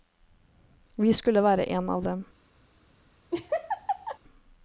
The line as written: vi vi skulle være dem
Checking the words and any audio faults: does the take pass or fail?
fail